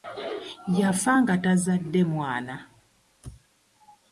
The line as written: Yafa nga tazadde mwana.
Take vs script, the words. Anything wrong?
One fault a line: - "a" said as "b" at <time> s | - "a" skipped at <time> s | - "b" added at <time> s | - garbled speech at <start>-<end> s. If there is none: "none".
none